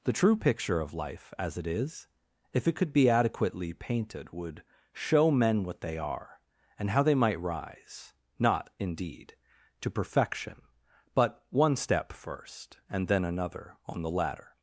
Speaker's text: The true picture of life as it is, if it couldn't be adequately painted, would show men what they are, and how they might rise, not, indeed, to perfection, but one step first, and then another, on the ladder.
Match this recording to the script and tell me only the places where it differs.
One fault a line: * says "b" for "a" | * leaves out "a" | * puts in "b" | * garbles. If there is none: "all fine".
* says "could" for "couldn't"